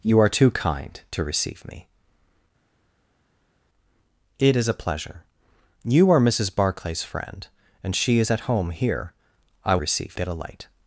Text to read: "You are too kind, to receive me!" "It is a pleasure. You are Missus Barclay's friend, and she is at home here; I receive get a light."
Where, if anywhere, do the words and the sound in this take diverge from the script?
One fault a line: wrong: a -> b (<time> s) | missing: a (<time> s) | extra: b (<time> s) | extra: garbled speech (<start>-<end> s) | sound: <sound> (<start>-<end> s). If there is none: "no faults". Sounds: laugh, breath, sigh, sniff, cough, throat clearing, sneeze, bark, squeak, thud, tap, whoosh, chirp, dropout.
no faults